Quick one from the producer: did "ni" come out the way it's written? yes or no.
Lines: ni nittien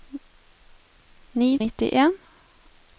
yes